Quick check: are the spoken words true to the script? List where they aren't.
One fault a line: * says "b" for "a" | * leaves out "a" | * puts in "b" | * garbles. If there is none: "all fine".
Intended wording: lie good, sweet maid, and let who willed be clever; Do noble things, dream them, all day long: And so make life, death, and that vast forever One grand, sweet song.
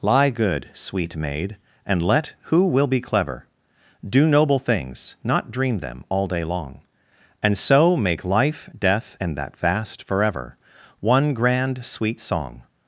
* says "will" for "willed"
* puts in "not"